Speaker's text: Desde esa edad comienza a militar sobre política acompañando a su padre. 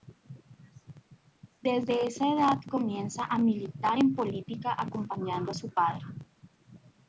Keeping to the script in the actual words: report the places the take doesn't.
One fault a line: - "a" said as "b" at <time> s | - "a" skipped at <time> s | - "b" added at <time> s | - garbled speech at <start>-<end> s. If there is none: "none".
- "sobre" said as "en" at 4.0 s